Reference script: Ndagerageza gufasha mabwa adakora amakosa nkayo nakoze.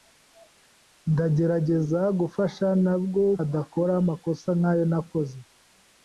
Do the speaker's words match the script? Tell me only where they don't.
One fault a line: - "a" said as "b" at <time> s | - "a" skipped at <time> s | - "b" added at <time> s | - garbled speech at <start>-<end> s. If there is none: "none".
none